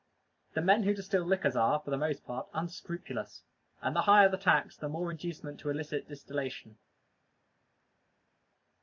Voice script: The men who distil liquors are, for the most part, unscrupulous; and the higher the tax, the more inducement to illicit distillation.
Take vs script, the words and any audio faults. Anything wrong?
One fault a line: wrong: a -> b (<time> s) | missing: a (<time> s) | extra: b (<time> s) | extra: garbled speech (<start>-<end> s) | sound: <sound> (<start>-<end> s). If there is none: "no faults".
no faults